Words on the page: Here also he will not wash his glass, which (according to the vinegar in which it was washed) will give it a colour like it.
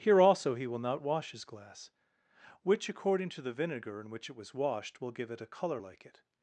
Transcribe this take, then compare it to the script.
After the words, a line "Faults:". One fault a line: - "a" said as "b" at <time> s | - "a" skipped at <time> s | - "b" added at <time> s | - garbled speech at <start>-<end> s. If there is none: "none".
Here also he will not wash his glass, which (according to the vinegar in which it was washed) will give it a colour like it.
Faults:
none